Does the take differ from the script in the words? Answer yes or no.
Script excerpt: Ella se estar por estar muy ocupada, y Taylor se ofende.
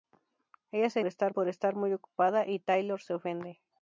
no